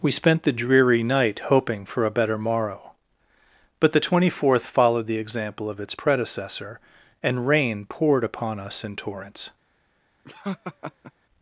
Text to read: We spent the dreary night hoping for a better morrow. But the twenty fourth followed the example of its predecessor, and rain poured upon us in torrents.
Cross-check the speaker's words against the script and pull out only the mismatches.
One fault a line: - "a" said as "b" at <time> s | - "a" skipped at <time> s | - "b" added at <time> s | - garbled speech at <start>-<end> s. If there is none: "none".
none